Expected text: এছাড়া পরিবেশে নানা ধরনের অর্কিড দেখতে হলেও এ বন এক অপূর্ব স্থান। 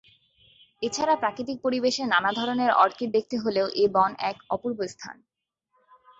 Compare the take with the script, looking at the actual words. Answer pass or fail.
fail